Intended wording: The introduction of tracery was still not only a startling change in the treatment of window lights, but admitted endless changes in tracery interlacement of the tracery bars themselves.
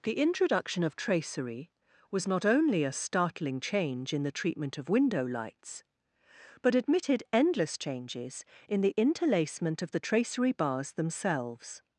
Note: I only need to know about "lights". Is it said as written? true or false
true